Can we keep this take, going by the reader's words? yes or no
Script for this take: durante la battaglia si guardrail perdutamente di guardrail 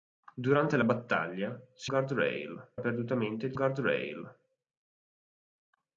yes